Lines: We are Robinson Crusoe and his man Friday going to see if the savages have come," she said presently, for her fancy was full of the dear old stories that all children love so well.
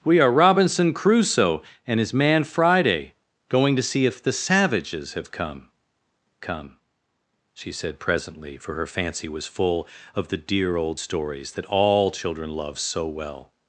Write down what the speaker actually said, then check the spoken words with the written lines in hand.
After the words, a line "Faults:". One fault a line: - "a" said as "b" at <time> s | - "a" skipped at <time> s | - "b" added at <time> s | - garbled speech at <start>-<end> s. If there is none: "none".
We are Robinson Crusoe and his man Friday going to see if the savages have come come," she said presently, for her fancy was full of the dear old stories that all children love so well.
Faults:
- "come" added at 6.4 s